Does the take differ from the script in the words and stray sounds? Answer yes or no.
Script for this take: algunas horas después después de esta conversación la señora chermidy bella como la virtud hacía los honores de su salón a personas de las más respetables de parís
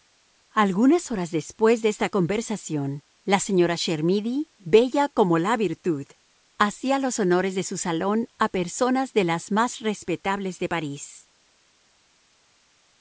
yes